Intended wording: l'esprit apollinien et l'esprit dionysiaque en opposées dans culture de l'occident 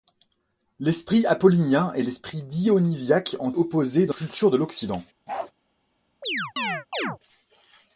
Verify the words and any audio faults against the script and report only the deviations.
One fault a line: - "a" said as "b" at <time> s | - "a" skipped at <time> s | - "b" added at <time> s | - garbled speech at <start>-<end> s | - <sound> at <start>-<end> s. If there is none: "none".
- bark at 5.3-5.5 s
- chirp at 6.2-7.2 s